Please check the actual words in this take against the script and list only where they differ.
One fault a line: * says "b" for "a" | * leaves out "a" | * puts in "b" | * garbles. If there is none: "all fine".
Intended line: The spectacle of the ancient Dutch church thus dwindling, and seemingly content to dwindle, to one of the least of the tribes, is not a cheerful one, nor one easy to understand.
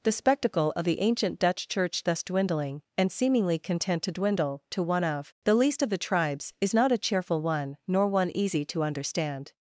all fine